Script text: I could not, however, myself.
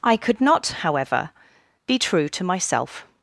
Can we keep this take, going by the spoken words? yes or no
no